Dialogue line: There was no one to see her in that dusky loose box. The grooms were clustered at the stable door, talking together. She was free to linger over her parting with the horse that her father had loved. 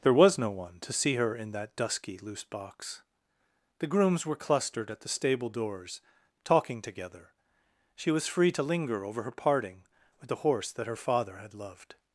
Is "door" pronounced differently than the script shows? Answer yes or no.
yes